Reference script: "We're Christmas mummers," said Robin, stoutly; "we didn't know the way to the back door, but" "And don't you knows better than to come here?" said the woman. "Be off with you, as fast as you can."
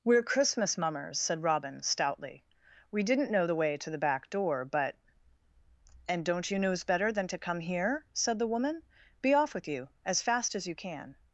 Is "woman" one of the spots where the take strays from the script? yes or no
no